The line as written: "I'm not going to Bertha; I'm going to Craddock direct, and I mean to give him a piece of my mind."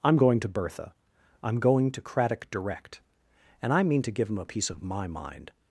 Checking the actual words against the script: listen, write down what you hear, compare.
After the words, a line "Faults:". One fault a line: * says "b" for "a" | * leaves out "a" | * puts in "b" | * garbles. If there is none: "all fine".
"I'm going to Bertha; I'm going to Craddock direct, and I mean to give him a piece of my mind."
Faults:
* leaves out "not"